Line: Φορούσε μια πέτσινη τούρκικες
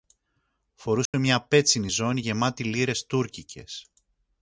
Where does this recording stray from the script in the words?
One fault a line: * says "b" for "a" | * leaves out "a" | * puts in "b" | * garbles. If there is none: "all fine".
* puts in "ζώνη γεμάτη λίρες"